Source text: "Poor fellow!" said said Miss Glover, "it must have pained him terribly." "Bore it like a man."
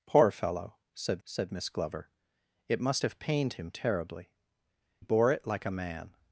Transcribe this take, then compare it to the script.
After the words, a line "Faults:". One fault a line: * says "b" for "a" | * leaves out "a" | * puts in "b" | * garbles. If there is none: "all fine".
"Poor fellow!" said said Miss Glover, "it must have pained him terribly." "Bore it like a man."
Faults:
all fine